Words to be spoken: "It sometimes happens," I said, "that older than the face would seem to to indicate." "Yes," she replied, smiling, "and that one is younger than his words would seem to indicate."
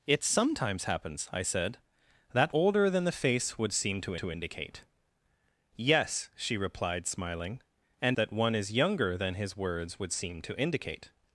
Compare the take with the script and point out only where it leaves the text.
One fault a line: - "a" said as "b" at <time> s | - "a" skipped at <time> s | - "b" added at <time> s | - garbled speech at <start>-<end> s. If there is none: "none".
none